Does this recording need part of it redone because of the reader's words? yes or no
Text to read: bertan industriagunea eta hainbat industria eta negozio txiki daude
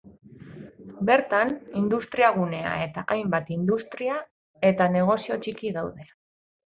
no